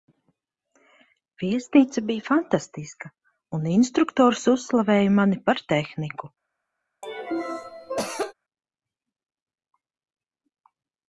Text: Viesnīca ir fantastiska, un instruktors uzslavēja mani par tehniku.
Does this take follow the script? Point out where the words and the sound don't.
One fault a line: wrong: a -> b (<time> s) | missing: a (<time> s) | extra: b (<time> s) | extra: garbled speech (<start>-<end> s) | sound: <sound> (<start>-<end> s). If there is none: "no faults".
wrong: ir -> bija (2.0 s)
sound: cough (7.0-8.3 s)